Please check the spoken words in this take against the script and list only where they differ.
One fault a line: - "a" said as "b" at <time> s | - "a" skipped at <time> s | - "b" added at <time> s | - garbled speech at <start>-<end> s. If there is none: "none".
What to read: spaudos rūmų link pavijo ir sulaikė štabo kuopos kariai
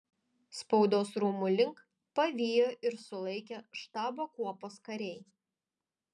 none